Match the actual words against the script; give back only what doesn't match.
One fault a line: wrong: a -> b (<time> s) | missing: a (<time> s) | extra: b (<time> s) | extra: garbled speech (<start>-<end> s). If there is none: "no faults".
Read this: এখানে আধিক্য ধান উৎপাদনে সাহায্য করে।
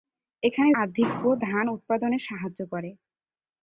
no faults